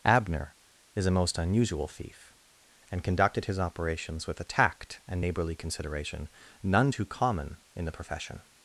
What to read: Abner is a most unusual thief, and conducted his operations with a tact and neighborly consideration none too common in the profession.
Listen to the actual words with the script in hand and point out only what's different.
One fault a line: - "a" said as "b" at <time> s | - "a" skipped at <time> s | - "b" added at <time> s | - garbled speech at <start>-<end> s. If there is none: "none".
none